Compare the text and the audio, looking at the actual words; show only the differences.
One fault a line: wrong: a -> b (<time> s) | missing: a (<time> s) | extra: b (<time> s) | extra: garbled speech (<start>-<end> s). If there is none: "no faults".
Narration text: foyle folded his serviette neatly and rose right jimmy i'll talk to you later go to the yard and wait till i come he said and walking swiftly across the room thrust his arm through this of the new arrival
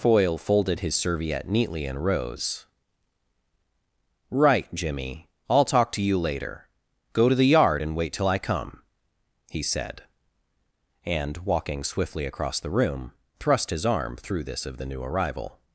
no faults